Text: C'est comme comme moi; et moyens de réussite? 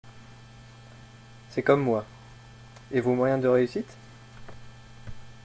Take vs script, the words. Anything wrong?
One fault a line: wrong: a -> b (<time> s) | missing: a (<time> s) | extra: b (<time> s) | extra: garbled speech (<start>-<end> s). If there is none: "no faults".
missing: comme (1.8 s)
extra: vos (3.0 s)